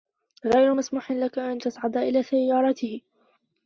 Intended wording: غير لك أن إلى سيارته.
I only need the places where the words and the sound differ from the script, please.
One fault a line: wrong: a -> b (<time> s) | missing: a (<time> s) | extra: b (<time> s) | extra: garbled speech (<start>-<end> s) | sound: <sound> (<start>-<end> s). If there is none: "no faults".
extra: مسموح (0.7 s)
extra: تصعد (1.6 s)